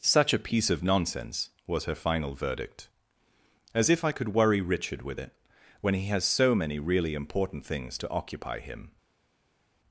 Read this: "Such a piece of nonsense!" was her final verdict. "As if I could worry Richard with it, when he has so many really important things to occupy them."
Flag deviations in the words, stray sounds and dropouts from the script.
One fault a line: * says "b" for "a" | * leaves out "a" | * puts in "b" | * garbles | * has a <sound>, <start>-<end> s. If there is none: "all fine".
* says "him" for "them"